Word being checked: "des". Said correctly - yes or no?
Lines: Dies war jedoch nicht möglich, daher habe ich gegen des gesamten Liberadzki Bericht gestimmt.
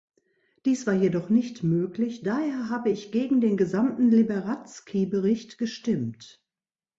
no